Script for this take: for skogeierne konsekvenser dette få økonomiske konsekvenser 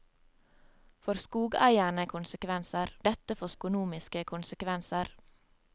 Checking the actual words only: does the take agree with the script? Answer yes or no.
yes